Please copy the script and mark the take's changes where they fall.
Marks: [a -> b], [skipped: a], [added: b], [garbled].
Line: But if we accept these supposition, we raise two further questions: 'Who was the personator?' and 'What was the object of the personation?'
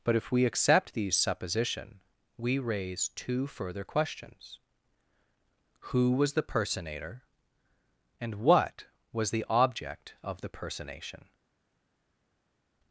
But if we accept these supposition, we raise two further questions: 'Who was the personator?' and 'What was the object of the personation?'